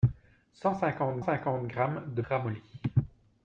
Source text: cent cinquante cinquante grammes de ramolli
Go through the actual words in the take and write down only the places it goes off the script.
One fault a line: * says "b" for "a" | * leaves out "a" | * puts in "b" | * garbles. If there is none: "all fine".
all fine